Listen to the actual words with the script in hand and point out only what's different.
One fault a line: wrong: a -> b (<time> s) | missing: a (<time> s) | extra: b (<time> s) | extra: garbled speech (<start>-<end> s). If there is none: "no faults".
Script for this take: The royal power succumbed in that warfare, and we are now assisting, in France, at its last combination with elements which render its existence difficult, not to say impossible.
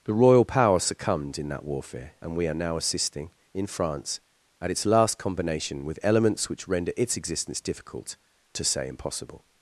missing: not (8.2 s)